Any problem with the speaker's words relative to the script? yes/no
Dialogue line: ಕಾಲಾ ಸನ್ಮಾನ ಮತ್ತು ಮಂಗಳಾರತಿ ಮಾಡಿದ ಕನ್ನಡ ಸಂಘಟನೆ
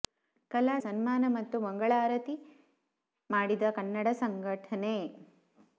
no